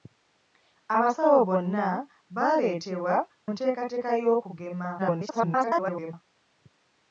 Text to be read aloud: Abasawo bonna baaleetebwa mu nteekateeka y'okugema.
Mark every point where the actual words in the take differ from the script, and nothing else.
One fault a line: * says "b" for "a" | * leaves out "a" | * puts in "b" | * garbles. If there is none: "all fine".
* leaves out "mu"
* garbles